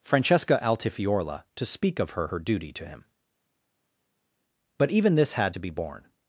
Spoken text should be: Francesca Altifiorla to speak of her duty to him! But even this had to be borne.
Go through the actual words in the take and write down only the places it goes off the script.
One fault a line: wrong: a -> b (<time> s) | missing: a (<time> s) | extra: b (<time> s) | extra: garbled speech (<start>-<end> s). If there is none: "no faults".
extra: her (2.2 s)